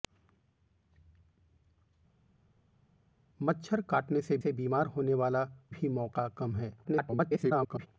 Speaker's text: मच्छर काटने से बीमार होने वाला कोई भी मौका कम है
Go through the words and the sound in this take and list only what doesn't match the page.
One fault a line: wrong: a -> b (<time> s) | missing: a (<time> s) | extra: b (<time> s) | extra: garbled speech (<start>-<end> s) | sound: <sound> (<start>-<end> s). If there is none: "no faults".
extra: से (4.4 s)
missing: कोई (5.4 s)
extra: garbled speech (6.8-7.9 s)